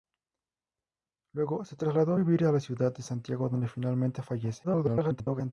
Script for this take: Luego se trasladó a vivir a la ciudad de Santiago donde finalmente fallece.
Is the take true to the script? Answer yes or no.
no